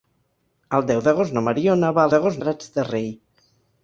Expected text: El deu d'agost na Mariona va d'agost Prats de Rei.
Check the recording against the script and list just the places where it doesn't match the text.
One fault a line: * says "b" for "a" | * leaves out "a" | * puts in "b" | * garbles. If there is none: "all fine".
all fine